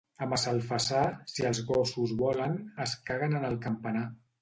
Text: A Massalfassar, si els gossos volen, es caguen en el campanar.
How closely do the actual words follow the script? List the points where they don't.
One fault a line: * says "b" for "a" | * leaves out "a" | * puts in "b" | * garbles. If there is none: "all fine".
all fine